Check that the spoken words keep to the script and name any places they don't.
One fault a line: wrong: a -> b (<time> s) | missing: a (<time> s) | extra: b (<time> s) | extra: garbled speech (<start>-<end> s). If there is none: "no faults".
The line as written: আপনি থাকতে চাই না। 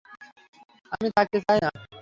wrong: আপনি -> আমি (0.9 s)